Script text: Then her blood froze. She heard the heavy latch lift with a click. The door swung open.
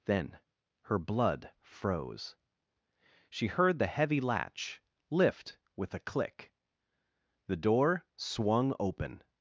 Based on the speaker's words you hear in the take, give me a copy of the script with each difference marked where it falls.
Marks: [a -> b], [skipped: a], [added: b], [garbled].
Then her blood froze. She heard the heavy latch lift with a click. The door swung open.